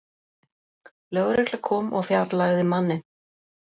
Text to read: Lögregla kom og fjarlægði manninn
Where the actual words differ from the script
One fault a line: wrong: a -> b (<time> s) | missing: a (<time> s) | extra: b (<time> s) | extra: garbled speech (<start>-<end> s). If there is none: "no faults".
no faults